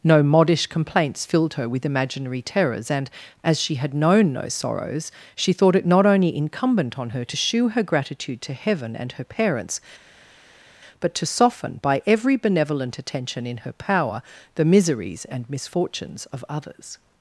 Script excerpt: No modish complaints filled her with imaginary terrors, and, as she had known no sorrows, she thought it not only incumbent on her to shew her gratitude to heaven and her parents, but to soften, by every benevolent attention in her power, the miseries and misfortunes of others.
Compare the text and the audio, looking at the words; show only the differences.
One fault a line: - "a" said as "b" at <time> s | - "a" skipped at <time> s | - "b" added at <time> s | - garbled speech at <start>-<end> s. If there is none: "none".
none